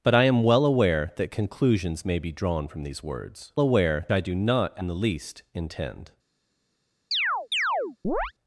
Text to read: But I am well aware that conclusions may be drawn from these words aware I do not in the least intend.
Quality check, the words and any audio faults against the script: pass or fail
fail